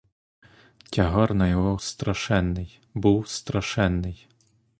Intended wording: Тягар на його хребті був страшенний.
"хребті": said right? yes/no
no